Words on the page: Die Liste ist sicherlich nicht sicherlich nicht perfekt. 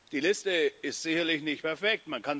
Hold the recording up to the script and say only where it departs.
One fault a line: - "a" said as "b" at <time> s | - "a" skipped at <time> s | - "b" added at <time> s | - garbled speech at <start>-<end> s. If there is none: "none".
- "sicherlich nicht" skipped at 1.6 s